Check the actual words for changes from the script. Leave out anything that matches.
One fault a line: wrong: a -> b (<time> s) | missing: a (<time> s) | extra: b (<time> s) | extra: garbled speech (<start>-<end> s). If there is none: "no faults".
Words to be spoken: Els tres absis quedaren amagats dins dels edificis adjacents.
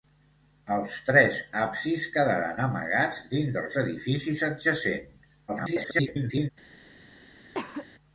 extra: garbled speech (5.5-6.5 s)